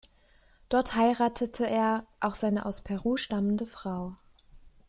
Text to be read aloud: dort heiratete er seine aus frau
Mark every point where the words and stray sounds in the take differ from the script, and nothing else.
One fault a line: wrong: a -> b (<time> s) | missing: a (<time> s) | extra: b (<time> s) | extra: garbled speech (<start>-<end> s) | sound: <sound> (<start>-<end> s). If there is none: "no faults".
extra: auch (2.2 s)
extra: peru stammende (2.8 s)